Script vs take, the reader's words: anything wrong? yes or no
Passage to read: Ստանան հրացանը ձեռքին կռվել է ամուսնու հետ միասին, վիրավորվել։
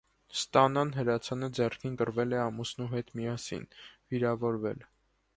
no